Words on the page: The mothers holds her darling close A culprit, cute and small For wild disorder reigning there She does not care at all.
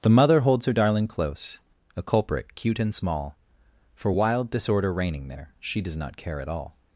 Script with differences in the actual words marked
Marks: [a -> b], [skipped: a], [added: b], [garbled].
The [mothers -> mother] holds her darling close A culprit, cute and small For wild disorder reigning there She does not care at all.